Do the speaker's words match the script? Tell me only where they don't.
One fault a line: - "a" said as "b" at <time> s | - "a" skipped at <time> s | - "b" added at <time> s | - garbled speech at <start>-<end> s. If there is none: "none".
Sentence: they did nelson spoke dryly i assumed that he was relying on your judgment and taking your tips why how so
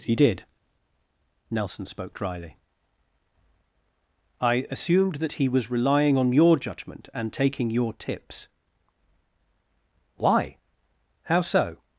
- "they" said as "he" at 0.0 s